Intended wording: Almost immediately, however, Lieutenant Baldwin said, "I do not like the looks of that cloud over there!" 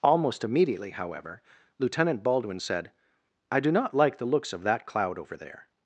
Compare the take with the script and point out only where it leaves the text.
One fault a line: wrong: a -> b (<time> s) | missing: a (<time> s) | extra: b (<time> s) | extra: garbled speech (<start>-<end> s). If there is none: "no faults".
no faults